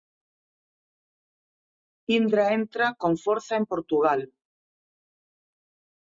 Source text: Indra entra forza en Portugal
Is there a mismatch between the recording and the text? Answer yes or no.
yes